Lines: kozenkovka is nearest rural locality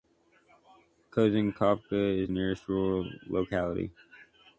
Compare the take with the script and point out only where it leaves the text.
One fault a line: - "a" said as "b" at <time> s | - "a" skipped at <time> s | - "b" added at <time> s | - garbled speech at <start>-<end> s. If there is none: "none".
none